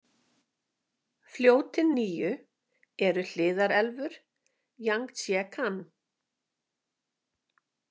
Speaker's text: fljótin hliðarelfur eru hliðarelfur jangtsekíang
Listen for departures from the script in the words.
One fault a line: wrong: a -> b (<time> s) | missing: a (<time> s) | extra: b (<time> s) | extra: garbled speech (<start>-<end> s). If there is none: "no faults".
wrong: hliðarelfur -> níu (2.0 s)